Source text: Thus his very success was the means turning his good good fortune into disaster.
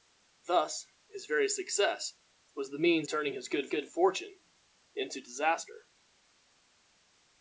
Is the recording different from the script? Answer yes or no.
no